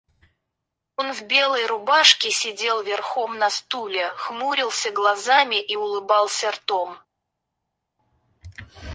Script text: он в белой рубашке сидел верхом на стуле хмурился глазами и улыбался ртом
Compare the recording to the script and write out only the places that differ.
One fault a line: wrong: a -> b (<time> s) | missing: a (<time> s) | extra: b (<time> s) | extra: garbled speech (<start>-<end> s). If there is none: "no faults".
no faults